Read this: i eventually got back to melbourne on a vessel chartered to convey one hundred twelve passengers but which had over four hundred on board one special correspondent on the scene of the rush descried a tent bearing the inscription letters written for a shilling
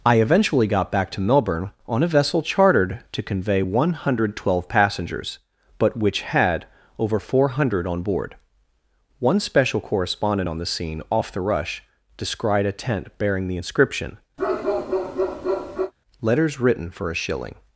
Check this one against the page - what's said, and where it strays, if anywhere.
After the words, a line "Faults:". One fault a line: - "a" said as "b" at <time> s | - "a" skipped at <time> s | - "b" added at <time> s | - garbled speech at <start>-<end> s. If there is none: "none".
i eventually got back to melbourne on a vessel chartered to convey one hundred twelve passengers but which had over four hundred on board one special correspondent on the scene off the rush descried a tent bearing the inscription letters written for a shilling
Faults:
- "of" said as "off" at 11.1 s